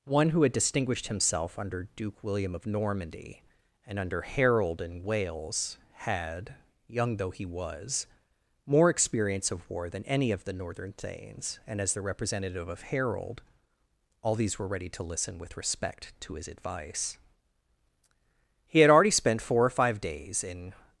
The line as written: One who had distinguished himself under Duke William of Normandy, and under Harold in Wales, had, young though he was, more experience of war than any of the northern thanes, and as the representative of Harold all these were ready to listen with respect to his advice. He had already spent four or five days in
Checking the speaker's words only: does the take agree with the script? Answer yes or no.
yes